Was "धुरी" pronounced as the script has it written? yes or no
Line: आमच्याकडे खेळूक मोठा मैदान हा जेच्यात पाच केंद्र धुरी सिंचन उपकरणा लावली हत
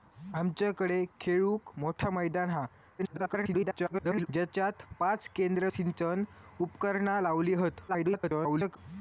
no